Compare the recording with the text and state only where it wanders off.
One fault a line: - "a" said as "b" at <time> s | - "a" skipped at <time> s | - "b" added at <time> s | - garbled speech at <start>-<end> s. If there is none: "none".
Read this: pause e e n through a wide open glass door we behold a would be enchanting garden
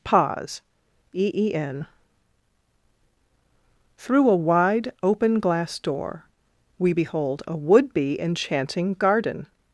none